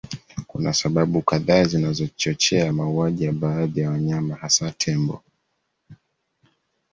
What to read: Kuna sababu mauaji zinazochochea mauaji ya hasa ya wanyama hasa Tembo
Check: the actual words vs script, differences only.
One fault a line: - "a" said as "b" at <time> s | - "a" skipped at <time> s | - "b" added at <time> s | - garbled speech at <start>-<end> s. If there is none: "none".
- "mauaji" said as "kadhaa" at 1.2 s
- "hasa" said as "baadhi" at 3.3 s